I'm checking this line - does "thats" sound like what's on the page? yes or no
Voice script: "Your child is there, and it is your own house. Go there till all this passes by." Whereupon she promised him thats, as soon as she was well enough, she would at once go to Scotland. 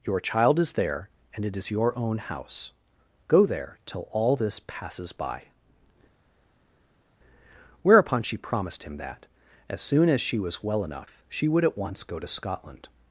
no